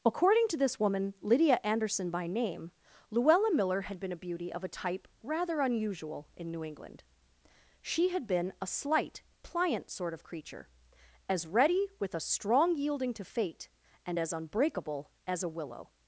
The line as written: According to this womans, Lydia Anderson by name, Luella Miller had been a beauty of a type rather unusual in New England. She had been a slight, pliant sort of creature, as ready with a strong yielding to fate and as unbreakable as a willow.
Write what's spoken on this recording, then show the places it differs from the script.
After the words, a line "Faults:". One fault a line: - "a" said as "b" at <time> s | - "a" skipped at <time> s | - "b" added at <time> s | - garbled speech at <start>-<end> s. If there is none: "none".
According to this woman, Lydia Anderson by name, Luella Miller had been a beauty of a type rather unusual in New England. She had been a slight, pliant sort of creature, as ready with a strong yielding to fate and as unbreakable as a willow.
Faults:
- "womans" said as "woman" at 0.8 s